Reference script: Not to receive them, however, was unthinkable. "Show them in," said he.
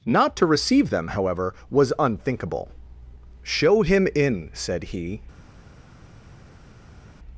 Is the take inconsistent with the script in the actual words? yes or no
yes